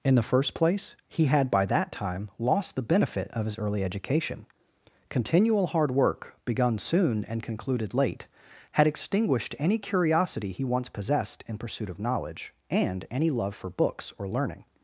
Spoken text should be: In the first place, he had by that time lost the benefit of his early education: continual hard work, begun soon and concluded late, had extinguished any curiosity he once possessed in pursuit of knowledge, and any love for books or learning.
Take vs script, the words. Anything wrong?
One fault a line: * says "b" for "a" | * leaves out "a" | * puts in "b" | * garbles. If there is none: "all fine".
all fine